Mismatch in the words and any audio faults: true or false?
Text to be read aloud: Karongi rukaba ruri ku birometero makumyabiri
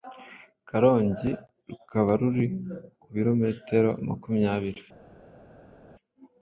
false